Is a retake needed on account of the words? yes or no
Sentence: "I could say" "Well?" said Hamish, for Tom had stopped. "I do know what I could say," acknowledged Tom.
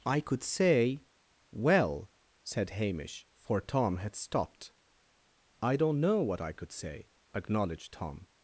yes